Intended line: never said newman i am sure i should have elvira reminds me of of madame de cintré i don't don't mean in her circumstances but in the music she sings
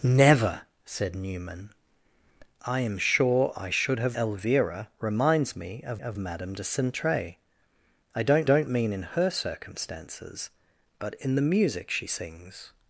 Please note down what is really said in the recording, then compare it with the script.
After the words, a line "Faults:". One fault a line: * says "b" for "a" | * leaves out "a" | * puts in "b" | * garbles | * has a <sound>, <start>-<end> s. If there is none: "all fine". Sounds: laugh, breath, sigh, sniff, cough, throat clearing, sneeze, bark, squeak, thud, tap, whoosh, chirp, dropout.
never said newman i am sure i should have elvira reminds me of of madame de cintré i don't don't mean in her circumstances but in the music she sings
Faults:
all fine